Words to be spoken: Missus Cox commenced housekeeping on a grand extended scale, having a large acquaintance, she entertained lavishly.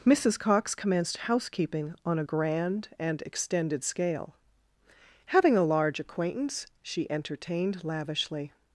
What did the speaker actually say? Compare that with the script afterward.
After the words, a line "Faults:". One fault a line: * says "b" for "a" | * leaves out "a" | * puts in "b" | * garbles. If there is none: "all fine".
Missus Cox commenced housekeeping on a grand and extended scale, having a large acquaintance, she entertained lavishly.
Faults:
* puts in "and"